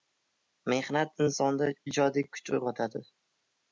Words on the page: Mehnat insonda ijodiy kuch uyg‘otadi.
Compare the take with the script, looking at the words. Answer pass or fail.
pass